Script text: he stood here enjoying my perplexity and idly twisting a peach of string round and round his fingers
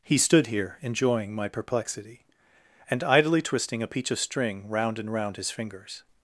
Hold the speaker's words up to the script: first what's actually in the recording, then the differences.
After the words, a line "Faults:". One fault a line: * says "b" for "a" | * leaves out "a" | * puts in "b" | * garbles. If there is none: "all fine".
he stood here enjoying my perplexity and idly twisting a peach of string round and round his fingers
Faults:
all fine